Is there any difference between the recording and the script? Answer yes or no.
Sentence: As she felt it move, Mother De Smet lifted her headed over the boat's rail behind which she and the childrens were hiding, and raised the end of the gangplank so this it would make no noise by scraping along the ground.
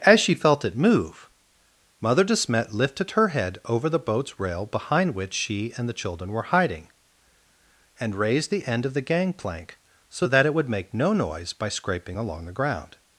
yes